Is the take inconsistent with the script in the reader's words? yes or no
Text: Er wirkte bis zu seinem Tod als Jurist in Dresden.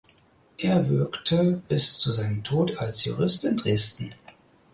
no